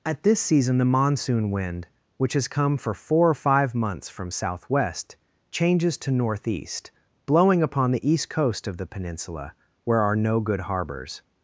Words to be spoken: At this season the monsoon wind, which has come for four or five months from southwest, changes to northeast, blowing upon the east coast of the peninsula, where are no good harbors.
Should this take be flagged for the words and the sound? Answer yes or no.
no